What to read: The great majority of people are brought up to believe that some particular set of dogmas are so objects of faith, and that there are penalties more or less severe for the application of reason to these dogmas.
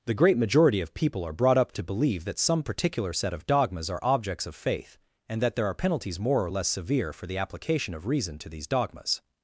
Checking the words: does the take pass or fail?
fail